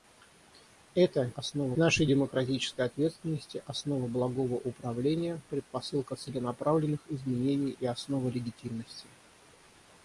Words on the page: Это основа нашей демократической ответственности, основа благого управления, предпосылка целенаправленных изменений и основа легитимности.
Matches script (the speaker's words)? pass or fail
pass